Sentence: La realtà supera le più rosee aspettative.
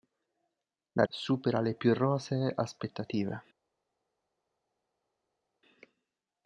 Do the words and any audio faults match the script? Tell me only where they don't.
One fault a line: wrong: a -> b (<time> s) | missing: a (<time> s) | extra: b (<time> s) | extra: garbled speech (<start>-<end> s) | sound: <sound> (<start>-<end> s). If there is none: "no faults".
missing: realtà (1.1 s)